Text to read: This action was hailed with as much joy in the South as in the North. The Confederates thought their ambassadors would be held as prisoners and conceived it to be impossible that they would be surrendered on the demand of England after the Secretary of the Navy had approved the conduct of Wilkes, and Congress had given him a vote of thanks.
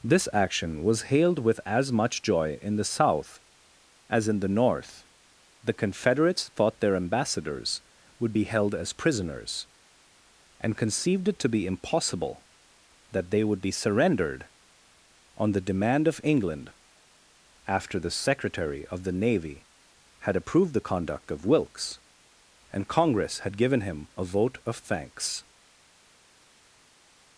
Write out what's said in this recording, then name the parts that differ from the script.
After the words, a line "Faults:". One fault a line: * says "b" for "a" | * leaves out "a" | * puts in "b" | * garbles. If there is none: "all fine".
This action was hailed with as much joy in the South as in the North. The Confederates thought their ambassadors would be held as prisoners and conceived it to be impossible that they would be surrendered on the demand of England after the Secretary of the Navy had approved the conduct of Wilkes, and Congress had given him a vote of thanks.
Faults:
all fine